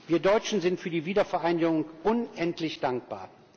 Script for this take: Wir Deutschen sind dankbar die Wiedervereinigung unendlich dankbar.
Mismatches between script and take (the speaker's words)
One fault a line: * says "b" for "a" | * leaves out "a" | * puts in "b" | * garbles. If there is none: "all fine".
* says "für" for "dankbar"